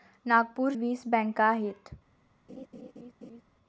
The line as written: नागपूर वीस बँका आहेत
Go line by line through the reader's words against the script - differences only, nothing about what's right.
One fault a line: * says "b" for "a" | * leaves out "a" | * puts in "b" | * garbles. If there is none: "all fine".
all fine